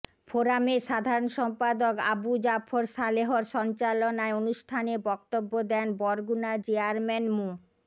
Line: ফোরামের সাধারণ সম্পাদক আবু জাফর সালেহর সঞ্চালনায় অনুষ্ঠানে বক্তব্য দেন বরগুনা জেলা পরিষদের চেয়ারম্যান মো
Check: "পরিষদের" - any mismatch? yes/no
yes